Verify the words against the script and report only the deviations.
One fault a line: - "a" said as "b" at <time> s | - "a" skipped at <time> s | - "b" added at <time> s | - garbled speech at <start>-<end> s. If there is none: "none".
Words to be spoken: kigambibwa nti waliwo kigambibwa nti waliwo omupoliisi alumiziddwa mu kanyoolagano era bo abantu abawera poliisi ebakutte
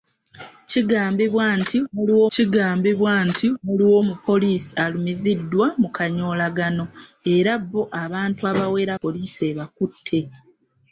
none